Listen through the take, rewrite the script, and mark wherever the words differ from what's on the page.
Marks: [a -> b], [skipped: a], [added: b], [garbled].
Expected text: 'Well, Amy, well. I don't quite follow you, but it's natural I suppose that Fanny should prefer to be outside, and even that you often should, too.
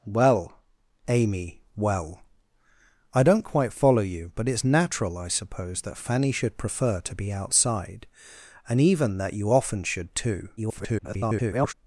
'Well, Amy, well. I don't quite follow you, but it's natural I suppose that Fanny should prefer to be outside, and even that you often should, too. [garbled]